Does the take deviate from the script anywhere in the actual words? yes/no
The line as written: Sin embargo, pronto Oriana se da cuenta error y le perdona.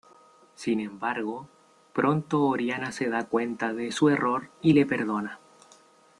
yes